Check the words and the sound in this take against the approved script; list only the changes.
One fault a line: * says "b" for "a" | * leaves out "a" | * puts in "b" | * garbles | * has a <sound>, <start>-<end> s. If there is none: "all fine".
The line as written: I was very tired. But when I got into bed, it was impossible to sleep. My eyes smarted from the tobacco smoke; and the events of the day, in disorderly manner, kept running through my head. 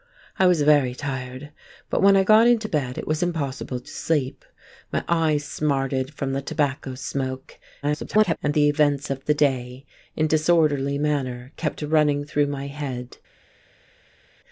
* garbles